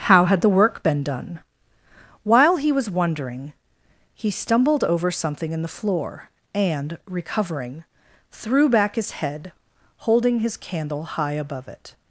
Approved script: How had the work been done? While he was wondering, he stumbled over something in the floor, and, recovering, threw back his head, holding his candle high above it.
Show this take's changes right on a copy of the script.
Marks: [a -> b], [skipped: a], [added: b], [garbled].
How had the work been done? While he was wondering, he stumbled over something in the floor, and, recovering, threw back his head, holding his candle high above it.